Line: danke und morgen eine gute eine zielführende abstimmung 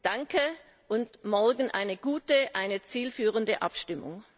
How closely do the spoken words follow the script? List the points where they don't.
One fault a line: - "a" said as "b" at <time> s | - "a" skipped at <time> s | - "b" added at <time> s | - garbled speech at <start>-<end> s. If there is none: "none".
none